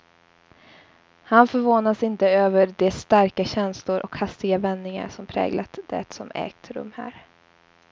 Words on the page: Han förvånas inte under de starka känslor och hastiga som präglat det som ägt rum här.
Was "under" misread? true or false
true